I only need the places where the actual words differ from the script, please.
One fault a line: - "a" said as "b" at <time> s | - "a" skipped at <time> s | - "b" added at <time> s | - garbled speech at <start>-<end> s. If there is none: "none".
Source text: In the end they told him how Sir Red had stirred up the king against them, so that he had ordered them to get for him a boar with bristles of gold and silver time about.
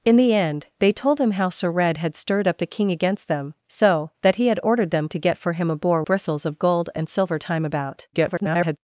- "with" skipped at 6.0 s
- garbled speech at 8.1-8.8 s